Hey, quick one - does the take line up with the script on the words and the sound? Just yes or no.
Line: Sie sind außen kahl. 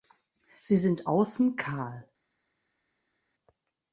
yes